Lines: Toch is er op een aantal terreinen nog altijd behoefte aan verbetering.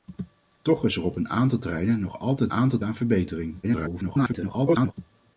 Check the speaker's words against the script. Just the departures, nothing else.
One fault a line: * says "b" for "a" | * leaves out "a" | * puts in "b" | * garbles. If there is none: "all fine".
* says "aantal" for "behoefte"
* garbles